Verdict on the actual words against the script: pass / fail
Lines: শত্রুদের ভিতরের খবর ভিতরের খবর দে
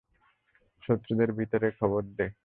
fail